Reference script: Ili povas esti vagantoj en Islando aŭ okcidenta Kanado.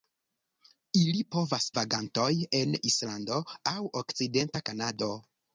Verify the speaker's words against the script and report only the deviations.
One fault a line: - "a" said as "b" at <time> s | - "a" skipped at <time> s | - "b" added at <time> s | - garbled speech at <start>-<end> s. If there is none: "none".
- "esti" skipped at 1.7 s